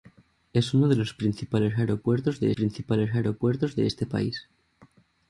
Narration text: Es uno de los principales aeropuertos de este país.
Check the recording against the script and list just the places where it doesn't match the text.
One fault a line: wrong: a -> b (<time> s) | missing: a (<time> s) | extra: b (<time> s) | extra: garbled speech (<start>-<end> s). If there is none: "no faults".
extra: principales aeropuertos de (2.5 s)